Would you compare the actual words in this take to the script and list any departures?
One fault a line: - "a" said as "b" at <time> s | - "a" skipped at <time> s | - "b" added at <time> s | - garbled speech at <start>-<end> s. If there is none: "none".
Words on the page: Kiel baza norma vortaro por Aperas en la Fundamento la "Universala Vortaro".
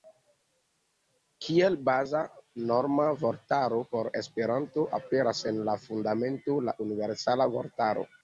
- "Esperanto" added at 4.2 s